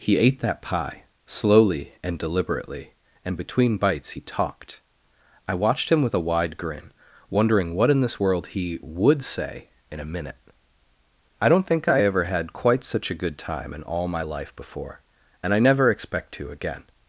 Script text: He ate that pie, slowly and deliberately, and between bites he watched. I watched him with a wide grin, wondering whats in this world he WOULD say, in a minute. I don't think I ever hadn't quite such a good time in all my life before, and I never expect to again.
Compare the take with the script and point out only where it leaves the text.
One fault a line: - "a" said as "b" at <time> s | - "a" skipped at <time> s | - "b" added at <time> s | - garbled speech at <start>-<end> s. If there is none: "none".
- "watched" said as "talked" at 4.2 s
- "whats" said as "what" at 7.7 s
- "hadn't" said as "had" at 12.2 s